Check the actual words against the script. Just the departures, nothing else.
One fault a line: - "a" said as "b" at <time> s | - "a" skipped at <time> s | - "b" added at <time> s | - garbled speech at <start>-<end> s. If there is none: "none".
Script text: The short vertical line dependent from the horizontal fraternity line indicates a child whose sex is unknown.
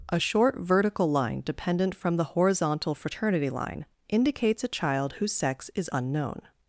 - "The" said as "A" at 0.1 s